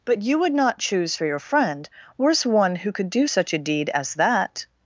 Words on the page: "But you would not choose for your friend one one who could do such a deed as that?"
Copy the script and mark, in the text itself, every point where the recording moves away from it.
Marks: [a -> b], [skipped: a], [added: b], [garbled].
"But you would not choose for your friend [one -> worse] one who could do such a deed as that?"